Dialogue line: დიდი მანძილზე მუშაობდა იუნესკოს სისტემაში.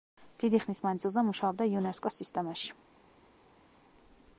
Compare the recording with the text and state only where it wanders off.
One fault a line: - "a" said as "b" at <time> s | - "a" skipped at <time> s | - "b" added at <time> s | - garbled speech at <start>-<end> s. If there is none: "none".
- "ხნის" added at 0.6 s